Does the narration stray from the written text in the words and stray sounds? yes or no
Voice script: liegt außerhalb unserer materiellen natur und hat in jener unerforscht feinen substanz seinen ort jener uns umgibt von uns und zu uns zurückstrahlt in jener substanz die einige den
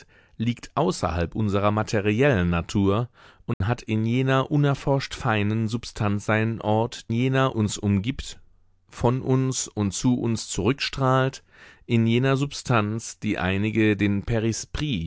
yes